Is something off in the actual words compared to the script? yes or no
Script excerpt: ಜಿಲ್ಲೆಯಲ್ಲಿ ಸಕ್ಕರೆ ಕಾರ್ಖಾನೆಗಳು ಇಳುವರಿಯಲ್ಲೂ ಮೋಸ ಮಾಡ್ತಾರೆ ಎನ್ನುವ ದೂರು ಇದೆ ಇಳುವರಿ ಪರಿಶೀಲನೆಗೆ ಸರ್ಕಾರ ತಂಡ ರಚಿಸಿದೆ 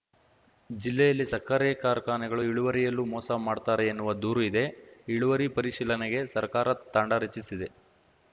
no